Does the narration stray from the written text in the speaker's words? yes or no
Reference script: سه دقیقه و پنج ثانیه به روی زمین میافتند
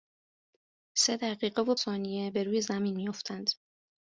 yes